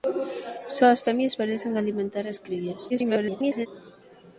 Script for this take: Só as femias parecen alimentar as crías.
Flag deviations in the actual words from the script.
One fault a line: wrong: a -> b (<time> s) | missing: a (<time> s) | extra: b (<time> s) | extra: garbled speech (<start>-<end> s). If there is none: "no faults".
extra: garbled speech (2.9-3.7 s)